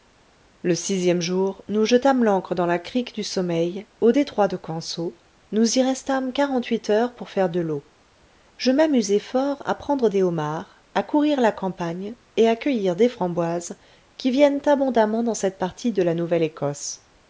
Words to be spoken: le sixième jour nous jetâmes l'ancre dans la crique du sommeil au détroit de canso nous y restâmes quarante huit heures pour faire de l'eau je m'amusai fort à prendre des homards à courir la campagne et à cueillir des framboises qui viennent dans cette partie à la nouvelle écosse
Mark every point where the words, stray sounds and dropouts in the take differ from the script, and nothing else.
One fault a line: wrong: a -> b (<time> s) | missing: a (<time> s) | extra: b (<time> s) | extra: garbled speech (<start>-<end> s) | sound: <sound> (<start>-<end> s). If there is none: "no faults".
extra: abondamment (14.6 s)
wrong: à -> de (15.9 s)